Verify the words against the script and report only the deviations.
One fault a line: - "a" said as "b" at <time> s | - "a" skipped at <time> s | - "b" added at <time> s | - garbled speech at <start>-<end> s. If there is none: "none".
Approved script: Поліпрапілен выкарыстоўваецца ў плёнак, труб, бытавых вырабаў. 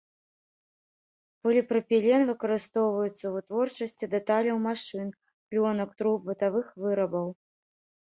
- "вытворчасці дэталяў машын" added at 3.4 s